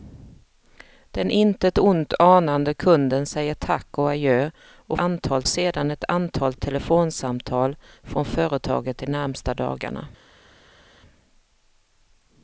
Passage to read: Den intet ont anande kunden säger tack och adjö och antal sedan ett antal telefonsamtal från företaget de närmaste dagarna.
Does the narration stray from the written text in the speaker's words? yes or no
no